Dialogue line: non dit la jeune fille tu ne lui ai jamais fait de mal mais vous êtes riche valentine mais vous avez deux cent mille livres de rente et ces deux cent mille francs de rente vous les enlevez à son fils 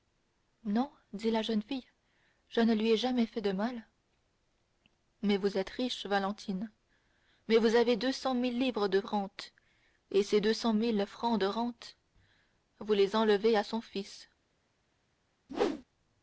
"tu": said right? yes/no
no